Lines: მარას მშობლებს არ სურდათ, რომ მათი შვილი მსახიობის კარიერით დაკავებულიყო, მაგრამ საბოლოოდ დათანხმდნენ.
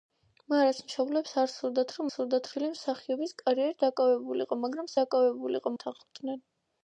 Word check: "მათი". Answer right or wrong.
wrong